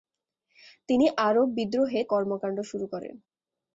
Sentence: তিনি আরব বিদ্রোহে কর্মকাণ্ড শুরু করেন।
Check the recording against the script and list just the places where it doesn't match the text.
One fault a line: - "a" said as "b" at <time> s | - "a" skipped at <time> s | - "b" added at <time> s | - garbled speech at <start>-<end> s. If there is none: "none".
none